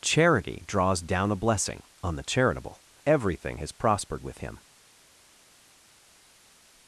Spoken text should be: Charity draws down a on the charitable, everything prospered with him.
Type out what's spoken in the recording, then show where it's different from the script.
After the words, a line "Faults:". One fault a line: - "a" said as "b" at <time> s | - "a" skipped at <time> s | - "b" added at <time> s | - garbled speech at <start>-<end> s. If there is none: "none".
Charity draws down a blessing on the charitable, everything has prospered with him.
Faults:
- "blessing" added at 1.4 s
- "has" added at 3.6 s